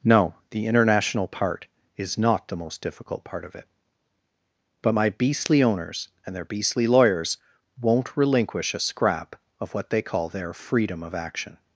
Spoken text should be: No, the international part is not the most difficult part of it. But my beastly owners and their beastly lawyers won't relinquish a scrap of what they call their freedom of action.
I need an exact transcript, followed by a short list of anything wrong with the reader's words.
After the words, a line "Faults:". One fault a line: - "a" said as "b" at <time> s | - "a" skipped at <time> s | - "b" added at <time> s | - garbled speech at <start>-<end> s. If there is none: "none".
No, the international part is not the most difficult part of it. But my beastly owners and their beastly lawyers won't relinquish a scrap of what they call their freedom of action.
Faults:
none